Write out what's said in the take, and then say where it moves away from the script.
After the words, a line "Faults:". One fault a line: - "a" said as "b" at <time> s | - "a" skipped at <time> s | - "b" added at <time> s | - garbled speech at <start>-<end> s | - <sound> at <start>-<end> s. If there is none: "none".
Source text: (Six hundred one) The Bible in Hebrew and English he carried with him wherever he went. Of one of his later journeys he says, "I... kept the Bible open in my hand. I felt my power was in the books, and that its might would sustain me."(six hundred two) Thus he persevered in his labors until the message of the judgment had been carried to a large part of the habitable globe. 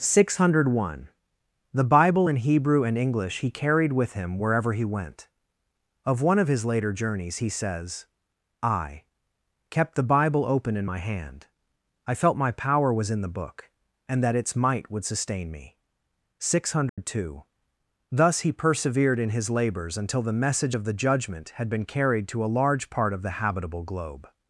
(Six hundred one) The Bible in Hebrew and English he carried with him wherever he went. Of one of his later journeys he says, "I... kept the Bible open in my hand. I felt my power was in the book, and that its might would sustain me."(six hundred two) Thus he persevered in his labors until the message of the judgment had been carried to a large part of the habitable globe.
Faults:
- "books" said as "book" at 13.3 s
- dropout at 16.9-17.0 s